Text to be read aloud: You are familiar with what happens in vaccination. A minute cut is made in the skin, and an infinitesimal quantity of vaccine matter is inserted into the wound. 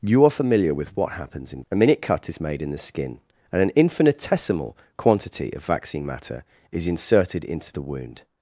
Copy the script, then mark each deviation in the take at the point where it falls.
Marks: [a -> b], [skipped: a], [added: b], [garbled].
You are familiar with what happens in [skipped: vaccination.] A minute cut is made in the skin, and an infinitesimal quantity of vaccine matter is inserted into the wound.